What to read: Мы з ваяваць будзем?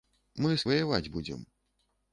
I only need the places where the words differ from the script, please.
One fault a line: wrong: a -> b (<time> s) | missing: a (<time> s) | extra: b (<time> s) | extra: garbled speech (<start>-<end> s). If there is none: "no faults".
no faults